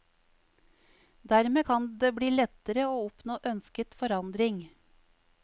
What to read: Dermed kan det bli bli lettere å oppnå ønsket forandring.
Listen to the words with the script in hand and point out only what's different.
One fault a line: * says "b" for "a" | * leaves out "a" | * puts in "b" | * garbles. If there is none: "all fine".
* leaves out "bli"